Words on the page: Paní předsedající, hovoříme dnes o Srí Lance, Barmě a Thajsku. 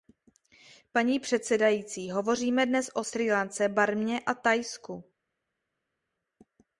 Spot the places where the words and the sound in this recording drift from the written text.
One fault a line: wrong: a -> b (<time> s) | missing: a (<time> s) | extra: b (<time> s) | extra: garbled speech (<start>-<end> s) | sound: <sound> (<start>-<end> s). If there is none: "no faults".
no faults